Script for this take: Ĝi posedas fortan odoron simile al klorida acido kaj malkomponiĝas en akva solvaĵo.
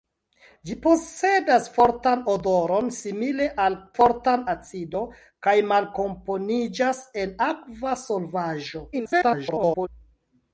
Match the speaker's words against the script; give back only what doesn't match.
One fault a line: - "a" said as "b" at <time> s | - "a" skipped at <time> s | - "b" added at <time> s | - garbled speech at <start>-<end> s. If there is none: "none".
- "klorida" said as "fortan" at 4.0 s
- garbled speech at 8.9-9.9 s